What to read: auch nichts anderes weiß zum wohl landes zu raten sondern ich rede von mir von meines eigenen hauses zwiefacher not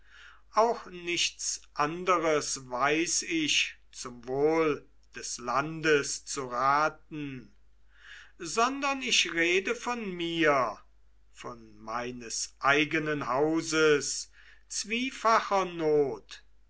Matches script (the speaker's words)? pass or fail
fail